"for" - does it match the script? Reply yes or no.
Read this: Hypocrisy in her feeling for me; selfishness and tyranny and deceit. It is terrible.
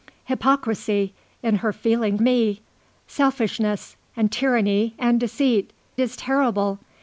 no